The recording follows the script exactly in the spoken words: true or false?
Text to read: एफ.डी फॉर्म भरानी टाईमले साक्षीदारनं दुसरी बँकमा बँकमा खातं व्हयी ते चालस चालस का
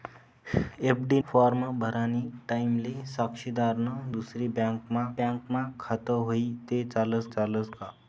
true